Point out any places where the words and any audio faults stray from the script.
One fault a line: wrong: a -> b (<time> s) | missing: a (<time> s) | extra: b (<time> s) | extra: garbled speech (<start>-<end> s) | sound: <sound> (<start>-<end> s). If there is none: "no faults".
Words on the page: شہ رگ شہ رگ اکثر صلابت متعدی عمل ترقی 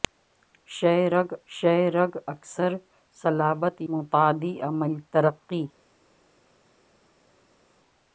no faults